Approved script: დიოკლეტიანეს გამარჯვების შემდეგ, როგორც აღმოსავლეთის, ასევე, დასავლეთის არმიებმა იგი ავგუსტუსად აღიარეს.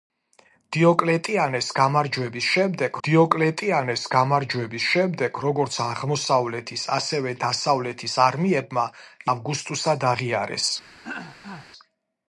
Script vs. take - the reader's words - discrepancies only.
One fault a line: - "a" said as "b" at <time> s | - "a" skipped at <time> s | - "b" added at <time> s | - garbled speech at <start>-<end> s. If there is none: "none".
- "დიოკლეტიანეს გამარჯვების შემდეგ" added at 3.1 s
- "იგი" skipped at 8.9 s